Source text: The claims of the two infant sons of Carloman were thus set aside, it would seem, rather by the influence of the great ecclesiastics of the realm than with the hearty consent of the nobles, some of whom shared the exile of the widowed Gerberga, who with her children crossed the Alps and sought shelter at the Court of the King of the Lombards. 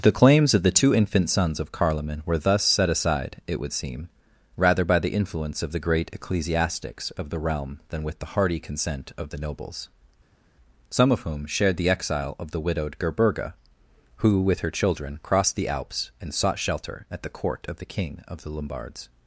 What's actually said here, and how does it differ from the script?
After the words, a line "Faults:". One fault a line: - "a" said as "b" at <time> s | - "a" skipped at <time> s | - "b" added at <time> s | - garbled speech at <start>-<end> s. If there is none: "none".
The claims of the two infant sons of Carloman were thus set aside, it would seem, rather by the influence of the great ecclesiastics of the realm than with the hearty consent of the nobles, some of whom shared the exile of the widowed Gerberga, who with her children crossed the Alps and sought shelter at the Court of the King of the Lombards.
Faults:
none